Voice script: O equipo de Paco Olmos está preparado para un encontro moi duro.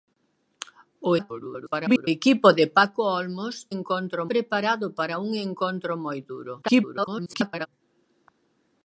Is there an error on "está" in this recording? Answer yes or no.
yes